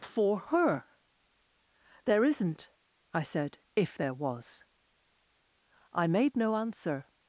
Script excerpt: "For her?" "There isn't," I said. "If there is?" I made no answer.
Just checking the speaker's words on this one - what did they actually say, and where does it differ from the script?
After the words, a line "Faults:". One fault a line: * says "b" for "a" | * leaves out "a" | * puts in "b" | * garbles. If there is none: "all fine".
"For her?" "There isn't," I said. "If there was?" I made no answer.
Faults:
* says "was" for "is"